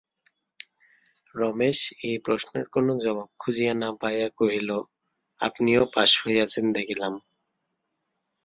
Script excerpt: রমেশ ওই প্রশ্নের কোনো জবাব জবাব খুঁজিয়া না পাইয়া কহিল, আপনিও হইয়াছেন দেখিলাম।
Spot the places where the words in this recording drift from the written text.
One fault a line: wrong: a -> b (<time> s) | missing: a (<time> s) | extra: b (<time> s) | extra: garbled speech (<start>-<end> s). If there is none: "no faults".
wrong: ওই -> এই (2.1 s)
missing: জবাব (3.3 s)
extra: পাস (6.0 s)